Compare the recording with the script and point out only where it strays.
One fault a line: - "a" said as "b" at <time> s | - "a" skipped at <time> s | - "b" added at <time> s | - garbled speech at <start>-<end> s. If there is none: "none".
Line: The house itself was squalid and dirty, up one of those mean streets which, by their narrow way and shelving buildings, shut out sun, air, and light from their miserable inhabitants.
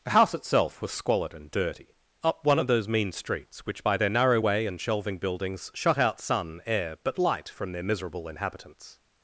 - "and" said as "but" at 7.0 s